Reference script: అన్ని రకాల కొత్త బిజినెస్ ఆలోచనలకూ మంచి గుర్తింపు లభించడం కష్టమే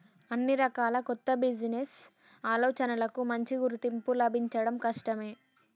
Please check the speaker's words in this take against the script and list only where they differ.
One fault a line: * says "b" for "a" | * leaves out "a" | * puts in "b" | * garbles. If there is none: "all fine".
all fine